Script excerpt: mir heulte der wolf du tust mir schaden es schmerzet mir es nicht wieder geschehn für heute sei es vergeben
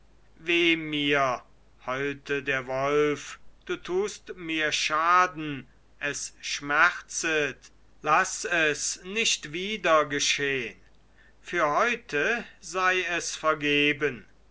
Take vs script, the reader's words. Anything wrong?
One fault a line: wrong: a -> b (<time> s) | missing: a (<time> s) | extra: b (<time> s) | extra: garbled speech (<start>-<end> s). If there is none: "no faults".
wrong: mir -> laß (8.0 s)